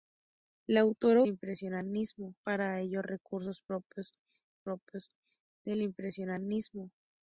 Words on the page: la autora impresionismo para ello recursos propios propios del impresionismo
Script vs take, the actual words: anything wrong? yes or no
no